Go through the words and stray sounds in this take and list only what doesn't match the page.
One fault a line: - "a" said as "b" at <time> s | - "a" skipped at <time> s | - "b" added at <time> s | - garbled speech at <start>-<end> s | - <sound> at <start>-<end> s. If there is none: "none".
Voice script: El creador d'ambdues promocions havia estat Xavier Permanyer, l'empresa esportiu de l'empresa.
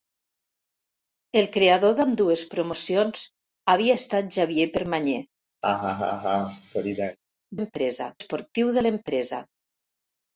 - laugh at 5.6-7.2 s